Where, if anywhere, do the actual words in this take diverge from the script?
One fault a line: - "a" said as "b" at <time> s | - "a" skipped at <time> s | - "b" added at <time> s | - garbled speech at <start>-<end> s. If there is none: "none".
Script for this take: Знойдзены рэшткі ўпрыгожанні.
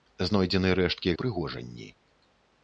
none